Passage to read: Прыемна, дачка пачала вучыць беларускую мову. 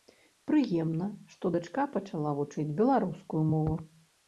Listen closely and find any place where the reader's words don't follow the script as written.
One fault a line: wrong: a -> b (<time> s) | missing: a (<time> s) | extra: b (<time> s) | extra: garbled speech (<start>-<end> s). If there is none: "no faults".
extra: што (1.4 s)